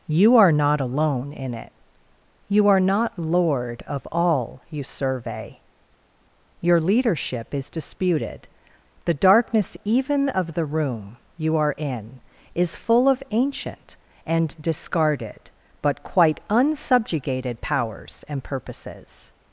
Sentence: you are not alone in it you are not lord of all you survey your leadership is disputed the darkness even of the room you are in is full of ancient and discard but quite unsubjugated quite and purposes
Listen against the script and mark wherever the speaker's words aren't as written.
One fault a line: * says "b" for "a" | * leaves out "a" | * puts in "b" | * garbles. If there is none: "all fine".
* says "discarded" for "discard"
* says "powers" for "quite"